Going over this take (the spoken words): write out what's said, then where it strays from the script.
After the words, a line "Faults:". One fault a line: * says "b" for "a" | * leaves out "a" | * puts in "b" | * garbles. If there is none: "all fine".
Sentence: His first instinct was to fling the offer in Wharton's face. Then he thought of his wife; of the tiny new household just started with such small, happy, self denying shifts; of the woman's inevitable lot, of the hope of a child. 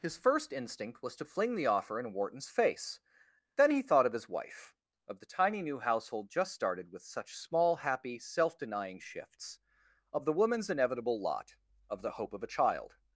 His first instinct was to fling the offer in Wharton's face. Then he thought of his wife; of the tiny new household just started with such small, happy, self denying shifts; of the woman's inevitable lot, of the hope of a child.
Faults:
all fine